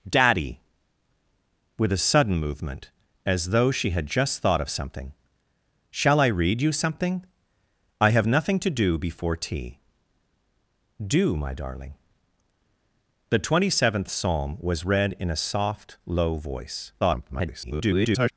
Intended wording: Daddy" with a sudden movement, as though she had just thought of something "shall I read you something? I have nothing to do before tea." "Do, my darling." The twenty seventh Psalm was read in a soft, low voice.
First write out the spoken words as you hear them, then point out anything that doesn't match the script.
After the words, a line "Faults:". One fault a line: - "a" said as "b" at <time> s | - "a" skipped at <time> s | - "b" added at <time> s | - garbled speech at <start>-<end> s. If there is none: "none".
Daddy" with a sudden movement, as though she had just thought of something "shall I read you something? I have nothing to do before tea." "Do, my darling." The twenty seventh Psalm was read in a soft, low voice. [garbled]
Faults:
- garbled speech at 17.0-18.3 s